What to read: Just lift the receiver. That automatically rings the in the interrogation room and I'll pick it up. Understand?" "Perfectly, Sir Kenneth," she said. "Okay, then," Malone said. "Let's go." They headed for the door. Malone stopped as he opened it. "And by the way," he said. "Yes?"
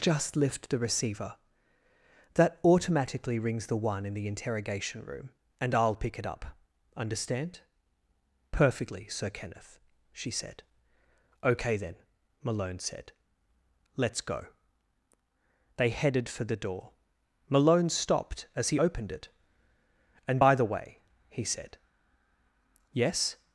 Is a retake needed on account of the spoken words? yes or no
yes